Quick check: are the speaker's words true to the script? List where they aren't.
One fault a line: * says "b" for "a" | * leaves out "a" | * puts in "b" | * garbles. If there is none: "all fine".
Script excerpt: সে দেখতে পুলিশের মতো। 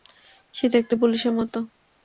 all fine